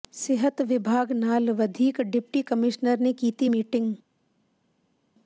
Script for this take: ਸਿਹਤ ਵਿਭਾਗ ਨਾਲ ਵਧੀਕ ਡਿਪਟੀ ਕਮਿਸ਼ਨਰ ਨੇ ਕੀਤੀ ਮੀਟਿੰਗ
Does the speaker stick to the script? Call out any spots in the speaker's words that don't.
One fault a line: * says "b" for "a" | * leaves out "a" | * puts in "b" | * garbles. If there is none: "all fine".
all fine